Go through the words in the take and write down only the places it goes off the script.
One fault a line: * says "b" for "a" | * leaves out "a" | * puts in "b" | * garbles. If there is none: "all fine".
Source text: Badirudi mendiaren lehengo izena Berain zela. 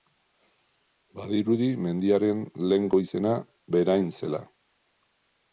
all fine